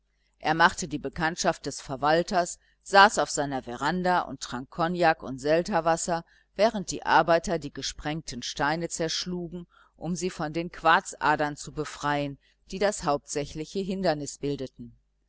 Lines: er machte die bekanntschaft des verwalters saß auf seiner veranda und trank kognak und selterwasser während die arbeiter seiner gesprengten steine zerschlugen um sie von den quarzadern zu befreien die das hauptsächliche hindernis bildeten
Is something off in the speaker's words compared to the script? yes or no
yes